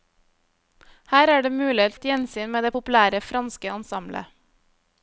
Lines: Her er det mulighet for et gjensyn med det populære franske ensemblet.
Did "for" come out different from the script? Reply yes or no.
yes